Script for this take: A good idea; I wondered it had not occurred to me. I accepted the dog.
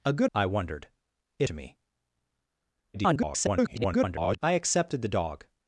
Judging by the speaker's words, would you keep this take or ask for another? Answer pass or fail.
fail